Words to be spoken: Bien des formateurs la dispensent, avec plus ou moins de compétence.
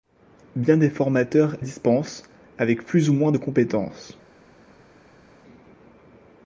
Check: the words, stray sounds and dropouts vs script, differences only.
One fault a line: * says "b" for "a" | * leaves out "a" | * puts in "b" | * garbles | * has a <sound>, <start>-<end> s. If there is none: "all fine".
* leaves out "la"